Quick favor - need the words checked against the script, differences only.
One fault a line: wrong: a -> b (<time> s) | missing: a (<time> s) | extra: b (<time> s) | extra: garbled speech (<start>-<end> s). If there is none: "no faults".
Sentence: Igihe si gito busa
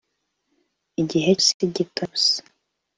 no faults